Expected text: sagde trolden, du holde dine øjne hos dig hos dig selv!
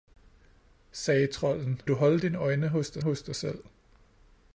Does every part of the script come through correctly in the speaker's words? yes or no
yes